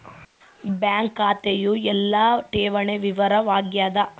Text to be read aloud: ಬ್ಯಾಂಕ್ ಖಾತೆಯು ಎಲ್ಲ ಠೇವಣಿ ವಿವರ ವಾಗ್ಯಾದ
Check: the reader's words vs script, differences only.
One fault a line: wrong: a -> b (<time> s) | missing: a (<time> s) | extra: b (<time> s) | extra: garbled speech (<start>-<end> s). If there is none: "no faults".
no faults